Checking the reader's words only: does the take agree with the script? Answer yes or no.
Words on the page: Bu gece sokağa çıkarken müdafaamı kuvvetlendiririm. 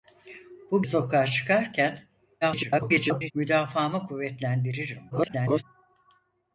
no